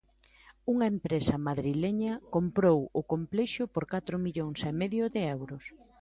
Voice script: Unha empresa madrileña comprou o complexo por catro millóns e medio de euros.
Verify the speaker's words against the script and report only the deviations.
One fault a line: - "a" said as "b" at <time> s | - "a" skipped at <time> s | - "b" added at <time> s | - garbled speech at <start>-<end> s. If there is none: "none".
none